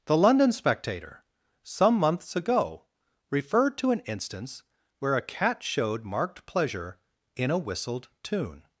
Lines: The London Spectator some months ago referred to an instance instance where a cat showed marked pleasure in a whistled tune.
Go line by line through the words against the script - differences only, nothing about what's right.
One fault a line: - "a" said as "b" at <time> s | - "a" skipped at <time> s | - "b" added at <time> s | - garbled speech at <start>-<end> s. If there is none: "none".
- "instance" skipped at 4.6 s